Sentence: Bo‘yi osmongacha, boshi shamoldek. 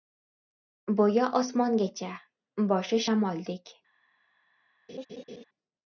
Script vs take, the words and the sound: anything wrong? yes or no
yes